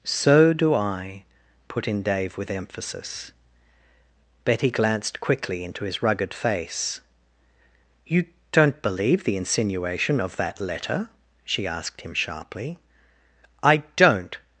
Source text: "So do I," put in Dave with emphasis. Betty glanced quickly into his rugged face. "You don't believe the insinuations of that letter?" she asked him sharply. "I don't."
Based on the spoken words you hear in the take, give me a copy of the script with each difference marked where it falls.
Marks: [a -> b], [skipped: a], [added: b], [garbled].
"So do I," put in Dave with emphasis. Betty glanced quickly into his rugged face. "You don't believe the [insinuations -> insinuation] of that letter?" she asked him sharply. "I don't."